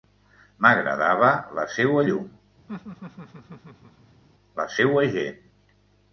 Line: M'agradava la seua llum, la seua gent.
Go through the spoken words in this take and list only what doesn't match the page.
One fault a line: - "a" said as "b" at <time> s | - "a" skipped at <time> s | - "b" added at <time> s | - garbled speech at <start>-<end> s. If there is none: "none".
none